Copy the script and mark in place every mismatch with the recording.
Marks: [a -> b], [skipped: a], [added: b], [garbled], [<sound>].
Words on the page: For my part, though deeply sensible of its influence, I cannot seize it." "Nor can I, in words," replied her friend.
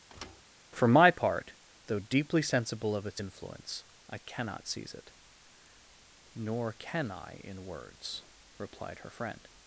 [thud] For my part, though deeply sensible of its influence, I cannot seize it." "Nor can I, in words," replied her friend.